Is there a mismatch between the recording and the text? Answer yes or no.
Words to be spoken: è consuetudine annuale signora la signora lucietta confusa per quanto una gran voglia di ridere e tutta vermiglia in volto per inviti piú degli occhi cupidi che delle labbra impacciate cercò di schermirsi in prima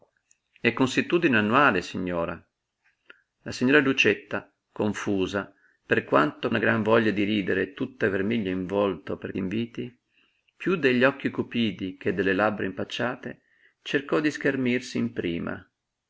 no